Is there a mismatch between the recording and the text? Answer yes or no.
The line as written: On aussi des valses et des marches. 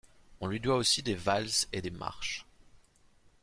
yes